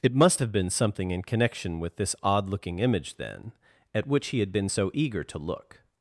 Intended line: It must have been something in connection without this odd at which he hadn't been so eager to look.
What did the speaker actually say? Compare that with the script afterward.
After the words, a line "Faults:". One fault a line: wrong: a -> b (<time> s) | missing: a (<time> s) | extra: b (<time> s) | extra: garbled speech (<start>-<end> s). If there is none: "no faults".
It must have been something in connection with this odd looking image, then, at which he had been so eager to look.
Faults:
wrong: without -> with (1.8 s)
extra: looking image then (2.5 s)
wrong: hadn't -> had (4.4 s)